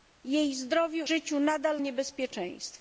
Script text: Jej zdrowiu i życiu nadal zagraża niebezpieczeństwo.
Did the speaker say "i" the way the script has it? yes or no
no